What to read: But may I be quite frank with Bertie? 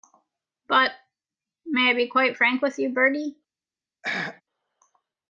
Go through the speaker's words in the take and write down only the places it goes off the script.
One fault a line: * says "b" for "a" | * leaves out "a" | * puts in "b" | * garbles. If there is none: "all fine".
* puts in "you"